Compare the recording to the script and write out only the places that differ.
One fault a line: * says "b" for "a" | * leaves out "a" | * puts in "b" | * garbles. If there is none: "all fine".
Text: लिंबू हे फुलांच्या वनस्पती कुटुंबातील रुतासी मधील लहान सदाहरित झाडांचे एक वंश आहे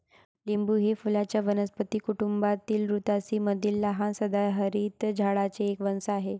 all fine